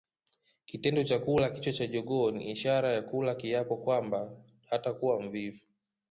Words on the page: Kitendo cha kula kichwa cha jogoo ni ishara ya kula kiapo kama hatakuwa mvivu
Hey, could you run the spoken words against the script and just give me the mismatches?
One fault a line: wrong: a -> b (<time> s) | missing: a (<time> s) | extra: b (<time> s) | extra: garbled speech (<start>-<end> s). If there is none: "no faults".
wrong: kama -> kwamba (3.8 s)